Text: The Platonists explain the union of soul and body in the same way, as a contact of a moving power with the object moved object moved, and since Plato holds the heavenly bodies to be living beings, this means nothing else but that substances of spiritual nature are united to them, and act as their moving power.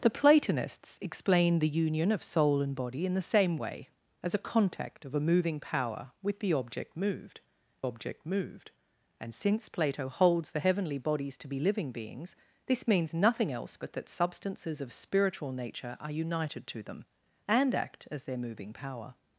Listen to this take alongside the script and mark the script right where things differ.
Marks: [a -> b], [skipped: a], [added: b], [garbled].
The Platonists explain the union of soul and body in the same way, as a contact of a moving power with the object moved object moved, and since Plato holds the heavenly bodies to be living beings, this means nothing else but that substances of spiritual nature are united to them, and act as their moving power.